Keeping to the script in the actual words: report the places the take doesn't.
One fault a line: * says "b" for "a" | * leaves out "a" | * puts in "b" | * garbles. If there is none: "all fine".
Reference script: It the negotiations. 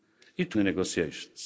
all fine